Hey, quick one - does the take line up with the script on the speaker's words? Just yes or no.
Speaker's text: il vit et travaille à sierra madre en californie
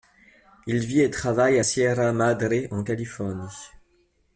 yes